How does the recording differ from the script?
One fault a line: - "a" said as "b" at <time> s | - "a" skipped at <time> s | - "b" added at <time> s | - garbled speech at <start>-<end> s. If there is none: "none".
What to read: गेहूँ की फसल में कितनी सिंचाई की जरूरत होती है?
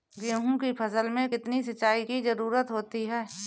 none